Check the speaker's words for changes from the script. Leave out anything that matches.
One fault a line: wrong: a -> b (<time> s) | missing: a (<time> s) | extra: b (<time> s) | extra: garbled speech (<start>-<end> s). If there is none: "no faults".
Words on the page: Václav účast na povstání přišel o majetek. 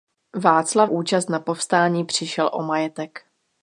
no faults